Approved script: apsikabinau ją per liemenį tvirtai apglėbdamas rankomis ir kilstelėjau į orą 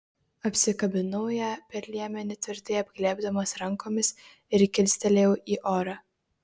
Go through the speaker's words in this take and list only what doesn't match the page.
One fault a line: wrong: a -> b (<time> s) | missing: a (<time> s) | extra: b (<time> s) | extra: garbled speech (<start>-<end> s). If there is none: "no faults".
no faults